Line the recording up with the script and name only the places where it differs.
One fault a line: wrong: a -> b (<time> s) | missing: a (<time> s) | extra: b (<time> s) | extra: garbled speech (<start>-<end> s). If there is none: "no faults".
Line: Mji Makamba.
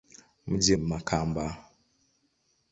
no faults